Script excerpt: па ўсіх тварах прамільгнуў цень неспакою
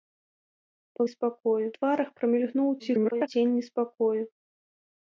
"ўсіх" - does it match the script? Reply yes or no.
no